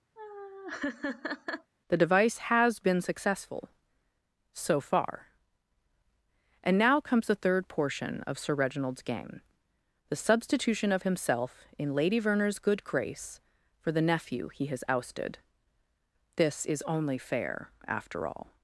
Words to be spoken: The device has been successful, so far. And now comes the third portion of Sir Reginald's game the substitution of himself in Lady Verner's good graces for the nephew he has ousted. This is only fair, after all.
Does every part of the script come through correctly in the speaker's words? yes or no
no